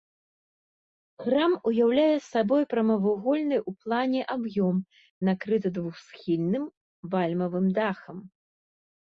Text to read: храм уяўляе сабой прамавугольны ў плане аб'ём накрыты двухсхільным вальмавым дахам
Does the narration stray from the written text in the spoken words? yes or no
no